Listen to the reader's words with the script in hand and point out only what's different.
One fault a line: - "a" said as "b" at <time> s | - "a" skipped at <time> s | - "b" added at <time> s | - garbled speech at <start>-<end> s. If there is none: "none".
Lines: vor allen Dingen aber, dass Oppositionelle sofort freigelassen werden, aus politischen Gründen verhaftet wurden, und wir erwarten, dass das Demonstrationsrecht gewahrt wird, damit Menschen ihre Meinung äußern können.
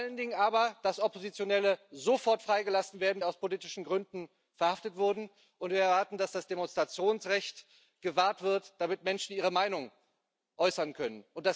none